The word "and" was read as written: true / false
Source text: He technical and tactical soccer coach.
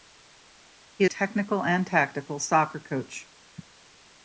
true